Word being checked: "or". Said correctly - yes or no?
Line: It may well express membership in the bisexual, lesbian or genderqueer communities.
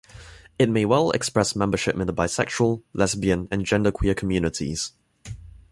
no